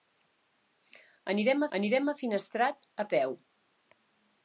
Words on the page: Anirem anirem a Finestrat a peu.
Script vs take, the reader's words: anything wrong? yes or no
no